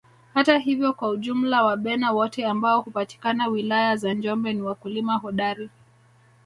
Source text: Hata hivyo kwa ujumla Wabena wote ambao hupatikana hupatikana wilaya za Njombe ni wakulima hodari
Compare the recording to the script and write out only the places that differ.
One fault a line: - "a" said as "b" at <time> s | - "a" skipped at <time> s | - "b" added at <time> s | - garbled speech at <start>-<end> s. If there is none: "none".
- "hupatikana" skipped at 3.5 s